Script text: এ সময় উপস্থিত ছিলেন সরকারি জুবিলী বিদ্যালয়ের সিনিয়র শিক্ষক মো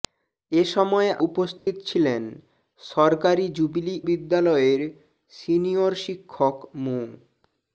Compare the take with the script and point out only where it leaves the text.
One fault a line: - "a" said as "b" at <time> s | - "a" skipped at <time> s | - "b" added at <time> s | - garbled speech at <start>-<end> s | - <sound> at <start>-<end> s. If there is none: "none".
- dropout at 1.6-1.7 s